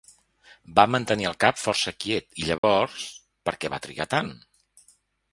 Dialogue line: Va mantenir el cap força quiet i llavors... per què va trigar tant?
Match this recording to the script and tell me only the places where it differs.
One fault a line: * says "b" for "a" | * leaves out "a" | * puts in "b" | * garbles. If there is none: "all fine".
all fine